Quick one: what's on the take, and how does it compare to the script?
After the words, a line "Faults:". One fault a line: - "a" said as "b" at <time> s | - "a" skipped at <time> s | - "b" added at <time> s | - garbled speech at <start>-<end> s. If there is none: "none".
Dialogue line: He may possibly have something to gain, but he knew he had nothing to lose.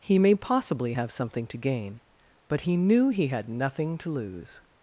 He may possibly have something to gain, but he knew he had nothing to lose.
Faults:
none